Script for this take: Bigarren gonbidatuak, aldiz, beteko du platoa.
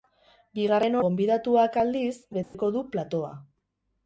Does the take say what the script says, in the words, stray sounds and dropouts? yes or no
no